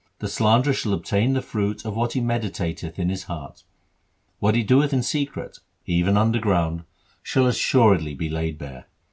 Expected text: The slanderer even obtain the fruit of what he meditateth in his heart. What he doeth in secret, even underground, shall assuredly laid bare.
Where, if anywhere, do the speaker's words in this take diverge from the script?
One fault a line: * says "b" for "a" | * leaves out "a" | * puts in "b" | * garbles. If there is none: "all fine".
* says "shall" for "even"
* puts in "be"